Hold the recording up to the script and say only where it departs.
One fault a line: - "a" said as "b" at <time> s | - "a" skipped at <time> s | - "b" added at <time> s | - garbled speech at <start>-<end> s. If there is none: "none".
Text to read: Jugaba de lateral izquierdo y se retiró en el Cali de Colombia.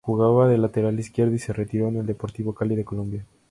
- "Deportivo" added at 2.0 s